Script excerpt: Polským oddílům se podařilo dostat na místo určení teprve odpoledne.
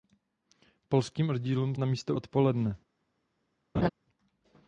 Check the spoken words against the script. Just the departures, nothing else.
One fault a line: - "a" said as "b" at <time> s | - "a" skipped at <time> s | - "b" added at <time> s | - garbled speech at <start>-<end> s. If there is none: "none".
- "se podařilo dostat" skipped at 1.8 s
- "určení teprve" skipped at 2.2 s